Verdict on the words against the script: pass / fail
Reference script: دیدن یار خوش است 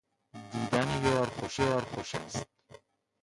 fail